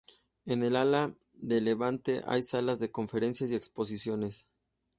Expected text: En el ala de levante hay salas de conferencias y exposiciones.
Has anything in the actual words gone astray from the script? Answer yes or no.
no